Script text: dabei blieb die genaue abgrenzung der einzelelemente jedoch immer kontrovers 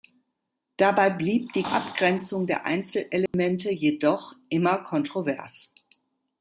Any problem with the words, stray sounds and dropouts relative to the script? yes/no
yes